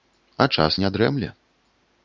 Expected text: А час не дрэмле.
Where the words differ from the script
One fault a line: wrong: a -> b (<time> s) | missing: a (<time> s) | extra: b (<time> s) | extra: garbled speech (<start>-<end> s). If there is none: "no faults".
no faults